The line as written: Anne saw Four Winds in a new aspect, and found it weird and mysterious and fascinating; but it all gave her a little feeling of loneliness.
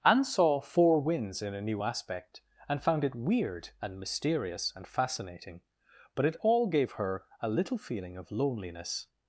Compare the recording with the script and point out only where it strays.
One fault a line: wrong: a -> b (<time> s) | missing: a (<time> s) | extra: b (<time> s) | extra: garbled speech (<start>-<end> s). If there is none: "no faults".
no faults